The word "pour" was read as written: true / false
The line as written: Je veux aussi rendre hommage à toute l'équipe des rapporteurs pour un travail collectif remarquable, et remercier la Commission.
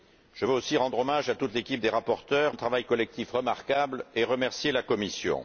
false